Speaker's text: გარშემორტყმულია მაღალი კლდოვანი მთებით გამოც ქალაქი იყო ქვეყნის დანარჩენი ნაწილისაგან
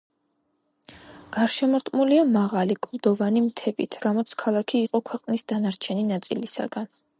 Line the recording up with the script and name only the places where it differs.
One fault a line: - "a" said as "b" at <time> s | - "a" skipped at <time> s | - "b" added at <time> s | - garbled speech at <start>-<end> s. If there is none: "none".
none